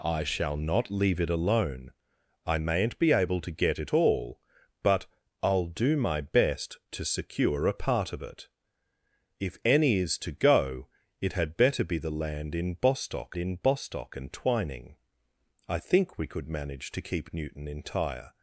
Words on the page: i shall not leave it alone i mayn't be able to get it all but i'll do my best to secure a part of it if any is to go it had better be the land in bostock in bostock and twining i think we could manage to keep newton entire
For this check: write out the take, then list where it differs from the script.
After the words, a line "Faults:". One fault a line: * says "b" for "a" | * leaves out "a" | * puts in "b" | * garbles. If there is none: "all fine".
i shall not leave it alone i mayn't be able to get it all but i'll do my best to secure a part of it if any is to go it had better be the land in bostock in bostock and twining i think we could manage to keep newton entire
Faults:
all fine